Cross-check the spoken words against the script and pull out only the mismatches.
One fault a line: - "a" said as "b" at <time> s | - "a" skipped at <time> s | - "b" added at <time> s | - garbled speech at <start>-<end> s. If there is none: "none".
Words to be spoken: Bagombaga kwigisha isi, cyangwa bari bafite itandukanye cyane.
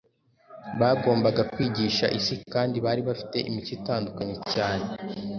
- "cyangwa" said as "kandi" at 2.5 s
- "imico" added at 3.5 s